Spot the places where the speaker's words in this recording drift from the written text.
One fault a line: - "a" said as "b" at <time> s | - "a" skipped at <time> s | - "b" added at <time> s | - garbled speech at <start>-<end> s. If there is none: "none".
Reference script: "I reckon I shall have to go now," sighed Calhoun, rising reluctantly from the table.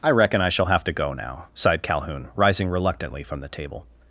none